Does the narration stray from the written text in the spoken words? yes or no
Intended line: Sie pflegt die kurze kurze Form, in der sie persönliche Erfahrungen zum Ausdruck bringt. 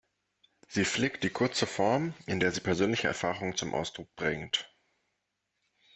yes